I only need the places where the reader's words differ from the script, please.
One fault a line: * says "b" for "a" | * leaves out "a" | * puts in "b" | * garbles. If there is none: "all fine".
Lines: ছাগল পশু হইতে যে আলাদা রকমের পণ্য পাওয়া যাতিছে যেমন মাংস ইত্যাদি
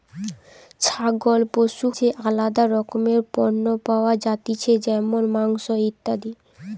* leaves out "হইতে"